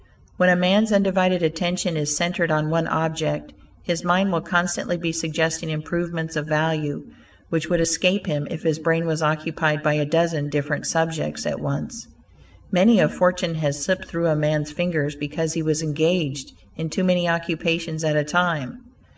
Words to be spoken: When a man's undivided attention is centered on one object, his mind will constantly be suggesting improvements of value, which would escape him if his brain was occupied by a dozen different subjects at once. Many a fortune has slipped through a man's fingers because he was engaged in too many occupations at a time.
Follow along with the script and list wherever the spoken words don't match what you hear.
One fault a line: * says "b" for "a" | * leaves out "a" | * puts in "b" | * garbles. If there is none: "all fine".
all fine